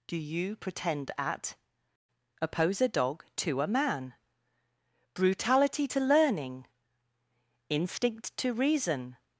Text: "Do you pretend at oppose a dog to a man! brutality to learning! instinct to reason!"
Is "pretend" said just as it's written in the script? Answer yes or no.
yes